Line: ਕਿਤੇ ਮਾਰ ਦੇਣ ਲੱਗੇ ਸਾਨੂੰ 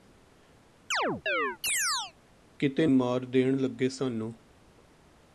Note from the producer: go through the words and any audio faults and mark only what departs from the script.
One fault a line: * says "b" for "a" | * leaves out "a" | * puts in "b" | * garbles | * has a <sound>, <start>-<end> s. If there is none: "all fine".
* has a chirp, 0.9-2.1 s